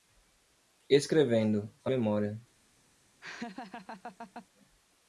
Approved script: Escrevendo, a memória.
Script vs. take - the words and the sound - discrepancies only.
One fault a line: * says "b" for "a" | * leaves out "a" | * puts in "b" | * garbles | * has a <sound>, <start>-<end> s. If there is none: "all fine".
* has a laugh, 3.2-4.5 s